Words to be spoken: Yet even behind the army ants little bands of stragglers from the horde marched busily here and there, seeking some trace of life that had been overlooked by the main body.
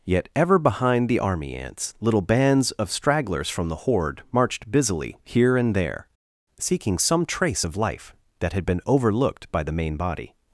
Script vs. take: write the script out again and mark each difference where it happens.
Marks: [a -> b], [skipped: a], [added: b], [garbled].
Yet [even -> ever] behind the army ants little bands of stragglers from the horde marched busily here and there, seeking some trace of life that had been overlooked by the main body.